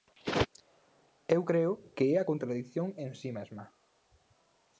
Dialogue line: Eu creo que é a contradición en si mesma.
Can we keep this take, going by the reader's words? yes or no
yes